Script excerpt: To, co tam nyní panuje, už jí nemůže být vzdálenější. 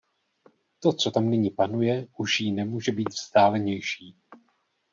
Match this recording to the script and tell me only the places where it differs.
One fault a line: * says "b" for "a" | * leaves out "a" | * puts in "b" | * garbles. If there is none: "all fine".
all fine